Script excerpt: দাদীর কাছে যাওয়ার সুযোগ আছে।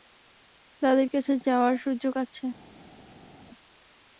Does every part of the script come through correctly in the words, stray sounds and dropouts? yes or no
yes